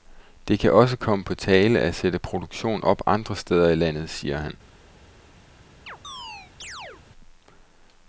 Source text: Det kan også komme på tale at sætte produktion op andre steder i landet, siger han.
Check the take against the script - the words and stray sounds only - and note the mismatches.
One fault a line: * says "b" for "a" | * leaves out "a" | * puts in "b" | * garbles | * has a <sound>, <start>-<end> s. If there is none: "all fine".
* has a chirp, 5.9-7.0 s